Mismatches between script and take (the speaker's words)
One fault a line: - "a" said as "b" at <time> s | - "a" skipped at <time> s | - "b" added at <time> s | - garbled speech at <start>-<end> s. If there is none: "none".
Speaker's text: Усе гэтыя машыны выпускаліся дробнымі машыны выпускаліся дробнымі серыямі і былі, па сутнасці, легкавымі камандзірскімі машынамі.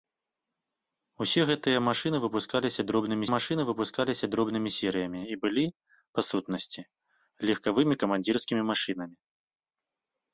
none